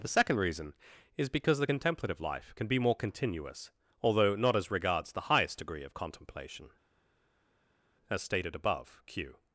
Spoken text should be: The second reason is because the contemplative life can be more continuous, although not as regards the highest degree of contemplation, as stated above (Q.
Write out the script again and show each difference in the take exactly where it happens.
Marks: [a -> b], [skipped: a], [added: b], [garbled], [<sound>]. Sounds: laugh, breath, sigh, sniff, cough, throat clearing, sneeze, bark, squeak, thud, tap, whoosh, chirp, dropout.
The second reason is because the contemplative life can be more continuous, although not as regards the highest degree of contemplation, as stated above (Q.